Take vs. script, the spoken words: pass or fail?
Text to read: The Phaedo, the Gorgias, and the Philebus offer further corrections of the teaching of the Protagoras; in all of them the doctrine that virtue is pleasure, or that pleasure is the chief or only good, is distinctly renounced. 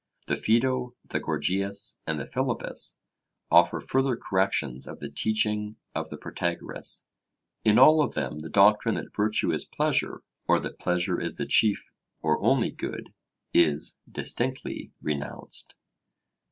pass